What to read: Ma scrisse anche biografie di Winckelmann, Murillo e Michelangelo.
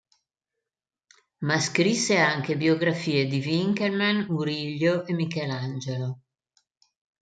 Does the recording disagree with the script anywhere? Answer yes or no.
no